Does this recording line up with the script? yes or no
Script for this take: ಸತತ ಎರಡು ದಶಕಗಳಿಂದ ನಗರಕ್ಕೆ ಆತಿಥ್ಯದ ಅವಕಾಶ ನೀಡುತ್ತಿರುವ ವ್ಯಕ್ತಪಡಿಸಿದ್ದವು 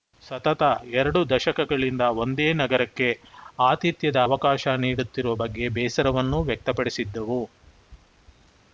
no